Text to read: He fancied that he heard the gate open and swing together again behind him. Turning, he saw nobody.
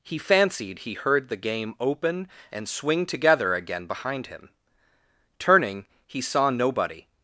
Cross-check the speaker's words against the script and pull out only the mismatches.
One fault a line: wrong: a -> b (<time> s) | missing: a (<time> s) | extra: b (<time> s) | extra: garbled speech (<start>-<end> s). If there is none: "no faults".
missing: that (0.8 s)
wrong: gate -> game (1.4 s)